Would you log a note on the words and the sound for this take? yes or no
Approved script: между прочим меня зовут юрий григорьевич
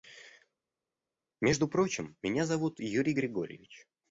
no